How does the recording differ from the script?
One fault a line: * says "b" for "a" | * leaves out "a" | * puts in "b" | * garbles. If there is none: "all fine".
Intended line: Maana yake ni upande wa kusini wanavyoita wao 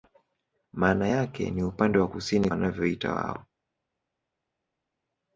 all fine